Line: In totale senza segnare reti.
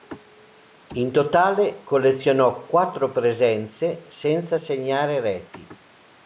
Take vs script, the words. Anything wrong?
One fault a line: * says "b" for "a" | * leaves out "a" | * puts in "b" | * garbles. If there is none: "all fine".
* puts in "collezionò quattro presenze"